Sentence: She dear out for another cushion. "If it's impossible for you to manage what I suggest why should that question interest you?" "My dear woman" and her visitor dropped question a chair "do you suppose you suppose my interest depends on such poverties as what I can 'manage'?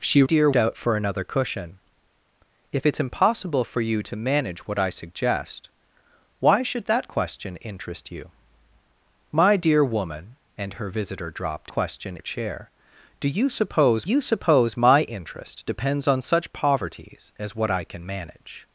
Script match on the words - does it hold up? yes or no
yes